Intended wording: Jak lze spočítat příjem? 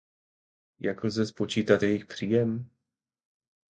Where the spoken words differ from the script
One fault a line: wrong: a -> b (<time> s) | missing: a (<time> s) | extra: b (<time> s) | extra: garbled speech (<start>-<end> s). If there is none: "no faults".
extra: jejich (1.8 s)